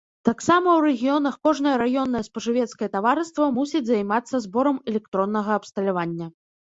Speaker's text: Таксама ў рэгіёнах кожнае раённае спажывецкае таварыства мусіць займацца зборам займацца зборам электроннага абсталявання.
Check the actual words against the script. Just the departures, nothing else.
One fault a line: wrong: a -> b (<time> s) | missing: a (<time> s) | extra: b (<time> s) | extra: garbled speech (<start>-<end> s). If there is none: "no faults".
missing: займацца зборам (4.8 s)